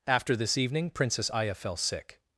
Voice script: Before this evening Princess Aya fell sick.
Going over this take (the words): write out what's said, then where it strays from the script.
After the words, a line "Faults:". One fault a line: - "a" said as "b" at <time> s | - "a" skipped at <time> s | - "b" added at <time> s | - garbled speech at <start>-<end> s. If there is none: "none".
After this evening Princess Aya fell sick.
Faults:
- "Before" said as "After" at 0.1 s